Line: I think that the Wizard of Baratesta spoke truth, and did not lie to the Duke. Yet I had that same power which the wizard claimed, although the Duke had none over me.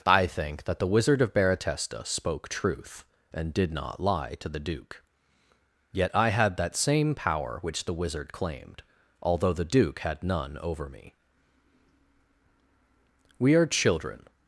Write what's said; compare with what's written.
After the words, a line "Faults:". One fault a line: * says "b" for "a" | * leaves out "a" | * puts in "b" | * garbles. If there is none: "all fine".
I think that the Wizard of Baratesta spoke truth, and did not lie to the Duke. Yet I had that same power which the wizard claimed, although the Duke had none over me. We are children
Faults:
* puts in "We are children"